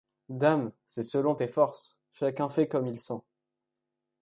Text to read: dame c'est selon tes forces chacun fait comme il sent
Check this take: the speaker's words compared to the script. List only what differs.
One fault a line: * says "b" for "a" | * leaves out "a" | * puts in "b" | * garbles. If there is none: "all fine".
all fine